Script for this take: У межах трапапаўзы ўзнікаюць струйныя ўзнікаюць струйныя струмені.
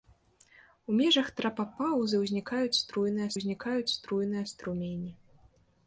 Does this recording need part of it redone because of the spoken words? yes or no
no